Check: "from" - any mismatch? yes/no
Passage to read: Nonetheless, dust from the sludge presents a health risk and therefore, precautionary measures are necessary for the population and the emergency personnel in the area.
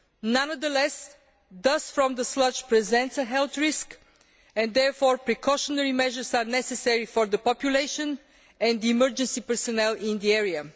no